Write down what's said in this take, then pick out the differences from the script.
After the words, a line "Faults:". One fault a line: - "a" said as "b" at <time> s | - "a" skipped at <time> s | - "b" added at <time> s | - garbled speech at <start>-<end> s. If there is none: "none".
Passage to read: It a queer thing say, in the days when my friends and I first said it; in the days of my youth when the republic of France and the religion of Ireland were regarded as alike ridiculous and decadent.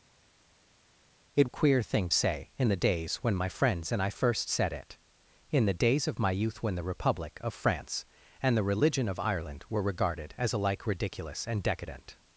It a queer thing say, in the days when my friends and I first said it; in the days of my youth when the republic of France and the religion of Ireland were regarded as alike ridiculous and decadent.
Faults:
none